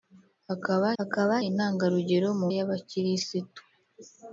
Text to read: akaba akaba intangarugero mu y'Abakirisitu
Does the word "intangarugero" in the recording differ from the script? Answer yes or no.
no